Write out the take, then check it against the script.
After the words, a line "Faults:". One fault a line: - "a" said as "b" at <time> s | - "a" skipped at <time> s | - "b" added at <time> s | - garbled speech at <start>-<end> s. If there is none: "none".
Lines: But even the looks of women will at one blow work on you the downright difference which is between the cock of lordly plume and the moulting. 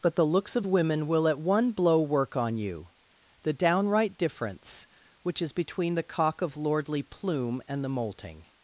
But the looks of women will at one blow work on you the downright difference which is between the cock of lordly plume and the moulting.
Faults:
- "even" skipped at 0.1 s